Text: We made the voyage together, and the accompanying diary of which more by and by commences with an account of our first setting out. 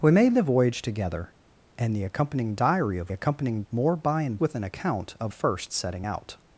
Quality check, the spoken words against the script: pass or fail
fail